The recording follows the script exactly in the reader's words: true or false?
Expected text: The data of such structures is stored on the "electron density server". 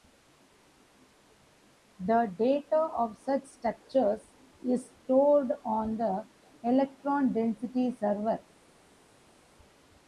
true